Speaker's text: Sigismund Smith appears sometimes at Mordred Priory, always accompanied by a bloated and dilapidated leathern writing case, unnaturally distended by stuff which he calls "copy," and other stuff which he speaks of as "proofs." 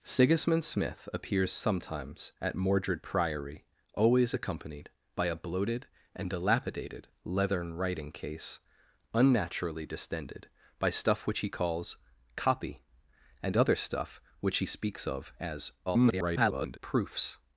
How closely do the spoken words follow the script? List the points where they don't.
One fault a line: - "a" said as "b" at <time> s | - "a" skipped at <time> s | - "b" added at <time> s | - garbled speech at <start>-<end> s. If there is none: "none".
- garbled speech at 15.9-16.8 s